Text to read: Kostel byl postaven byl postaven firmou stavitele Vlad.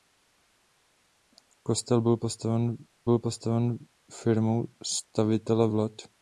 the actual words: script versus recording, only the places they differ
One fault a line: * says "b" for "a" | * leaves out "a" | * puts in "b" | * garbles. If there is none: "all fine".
all fine